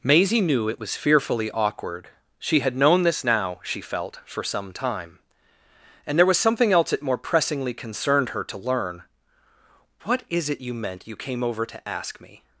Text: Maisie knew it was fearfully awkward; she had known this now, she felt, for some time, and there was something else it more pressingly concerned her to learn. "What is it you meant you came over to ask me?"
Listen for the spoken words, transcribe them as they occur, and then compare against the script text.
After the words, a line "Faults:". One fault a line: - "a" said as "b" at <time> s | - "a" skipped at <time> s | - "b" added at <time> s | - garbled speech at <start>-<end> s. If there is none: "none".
Maisie knew it was fearfully awkward; she had known this now, she felt, for some time, and there was something else it more pressingly concerned her to learn. "What is it you meant you came over to ask me?"
Faults:
none